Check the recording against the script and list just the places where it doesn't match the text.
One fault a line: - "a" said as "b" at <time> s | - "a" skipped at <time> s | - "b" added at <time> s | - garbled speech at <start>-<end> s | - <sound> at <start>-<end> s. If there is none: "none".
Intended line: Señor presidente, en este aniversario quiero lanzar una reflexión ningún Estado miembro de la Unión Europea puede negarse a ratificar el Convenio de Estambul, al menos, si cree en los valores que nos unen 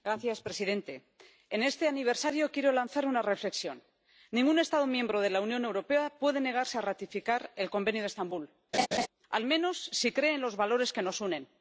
- laugh at 8.7-9.1 s